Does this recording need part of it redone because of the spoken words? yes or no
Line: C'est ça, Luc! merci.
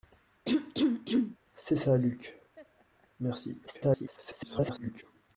yes